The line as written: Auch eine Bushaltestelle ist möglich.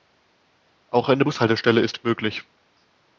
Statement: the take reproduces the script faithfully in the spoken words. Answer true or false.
true